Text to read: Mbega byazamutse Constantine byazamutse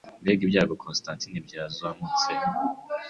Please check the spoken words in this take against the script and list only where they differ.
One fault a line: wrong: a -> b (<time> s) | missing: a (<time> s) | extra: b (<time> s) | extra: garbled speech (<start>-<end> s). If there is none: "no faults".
wrong: byazamutse -> ibyago (0.5 s)